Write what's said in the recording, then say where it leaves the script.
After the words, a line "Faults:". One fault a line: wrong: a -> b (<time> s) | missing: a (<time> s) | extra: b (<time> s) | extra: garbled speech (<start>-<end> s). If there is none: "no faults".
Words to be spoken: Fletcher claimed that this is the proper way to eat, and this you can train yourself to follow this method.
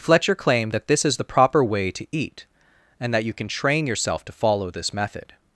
Fletcher claimed that this is the proper way to eat, and that you can train yourself to follow this method.
Faults:
wrong: this -> that (3.1 s)